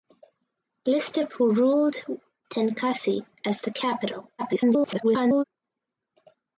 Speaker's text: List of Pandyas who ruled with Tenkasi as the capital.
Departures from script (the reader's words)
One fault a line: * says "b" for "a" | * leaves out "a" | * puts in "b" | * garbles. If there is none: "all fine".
* leaves out "Pandyas"
* leaves out "with"
* garbles